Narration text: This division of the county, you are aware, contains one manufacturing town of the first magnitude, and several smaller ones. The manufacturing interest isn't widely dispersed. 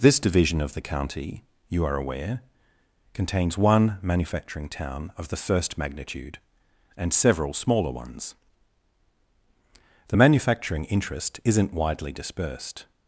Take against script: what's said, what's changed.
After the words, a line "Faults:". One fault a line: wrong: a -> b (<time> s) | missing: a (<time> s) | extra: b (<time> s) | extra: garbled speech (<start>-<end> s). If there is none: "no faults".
This division of the county, you are aware, contains one manufacturing town of the first magnitude, and several smaller ones. The manufacturing interest isn't widely dispersed.
Faults:
no faults